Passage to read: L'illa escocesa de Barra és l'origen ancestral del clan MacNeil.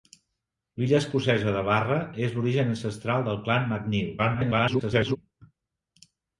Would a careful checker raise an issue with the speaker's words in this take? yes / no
yes